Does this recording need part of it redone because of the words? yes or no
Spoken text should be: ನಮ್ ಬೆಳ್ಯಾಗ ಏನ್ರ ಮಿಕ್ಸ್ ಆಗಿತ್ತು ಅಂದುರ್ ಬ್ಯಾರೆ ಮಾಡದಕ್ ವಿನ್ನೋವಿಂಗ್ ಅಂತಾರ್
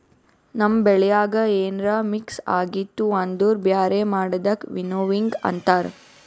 no